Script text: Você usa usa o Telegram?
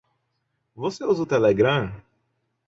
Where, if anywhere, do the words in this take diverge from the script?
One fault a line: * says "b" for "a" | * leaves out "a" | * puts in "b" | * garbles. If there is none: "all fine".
* leaves out "usa"